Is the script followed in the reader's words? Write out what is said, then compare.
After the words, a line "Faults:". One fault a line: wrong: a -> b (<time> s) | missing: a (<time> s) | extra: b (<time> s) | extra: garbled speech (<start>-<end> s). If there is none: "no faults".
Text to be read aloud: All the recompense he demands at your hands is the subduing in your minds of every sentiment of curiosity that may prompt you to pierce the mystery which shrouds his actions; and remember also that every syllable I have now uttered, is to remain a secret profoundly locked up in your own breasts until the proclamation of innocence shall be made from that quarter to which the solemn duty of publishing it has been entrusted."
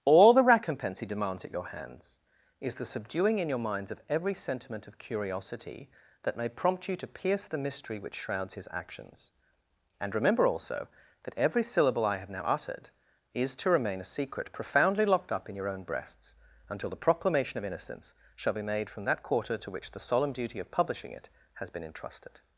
All the recompense he demands at your hands is the subduing in your minds of every sentiment of curiosity that may prompt you to pierce the mystery which shrouds his actions; and remember also that every syllable I have now uttered, is to remain a secret profoundly locked up in your own breasts until the proclamation of innocence shall be made from that quarter to which the solemn duty of publishing it has been entrusted."
Faults:
no faults